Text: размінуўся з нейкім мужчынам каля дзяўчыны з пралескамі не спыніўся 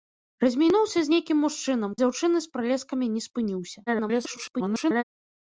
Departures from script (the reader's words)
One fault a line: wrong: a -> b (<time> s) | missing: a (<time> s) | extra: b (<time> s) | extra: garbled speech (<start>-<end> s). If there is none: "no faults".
missing: каля (1.9 s)
extra: garbled speech (3.9-5.0 s)